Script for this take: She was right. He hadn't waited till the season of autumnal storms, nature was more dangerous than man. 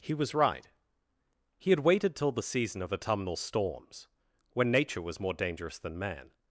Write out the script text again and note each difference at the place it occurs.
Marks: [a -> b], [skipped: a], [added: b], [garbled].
[She -> He] was right. He [hadn't -> had] waited till the season of autumnal storms, [added: when] nature was more dangerous than man.